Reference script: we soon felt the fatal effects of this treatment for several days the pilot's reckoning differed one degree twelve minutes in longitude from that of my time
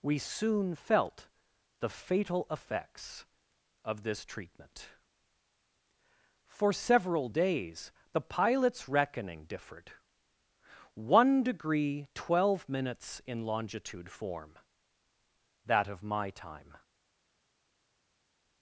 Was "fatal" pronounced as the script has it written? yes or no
yes